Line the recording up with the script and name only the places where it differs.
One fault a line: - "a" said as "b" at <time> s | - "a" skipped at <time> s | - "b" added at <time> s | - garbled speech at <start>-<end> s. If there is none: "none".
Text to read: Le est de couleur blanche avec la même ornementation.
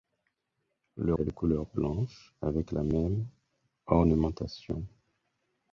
none